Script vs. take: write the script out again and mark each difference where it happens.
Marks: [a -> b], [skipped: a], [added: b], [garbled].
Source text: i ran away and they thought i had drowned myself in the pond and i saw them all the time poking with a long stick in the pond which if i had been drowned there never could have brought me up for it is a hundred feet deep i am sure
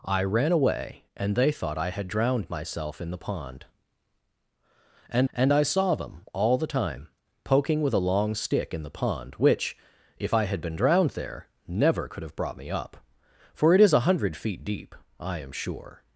i ran away and they thought i had drowned myself in the pond and [added: and] i saw them all the time poking with a long stick in the pond which if i had been drowned there never could have brought me up for it is a hundred feet deep i am sure